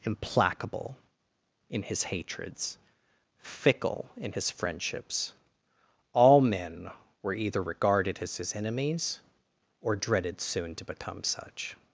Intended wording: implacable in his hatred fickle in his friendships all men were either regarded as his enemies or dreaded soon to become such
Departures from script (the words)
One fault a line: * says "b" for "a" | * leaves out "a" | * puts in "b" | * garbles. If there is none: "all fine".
* says "hatreds" for "hatred"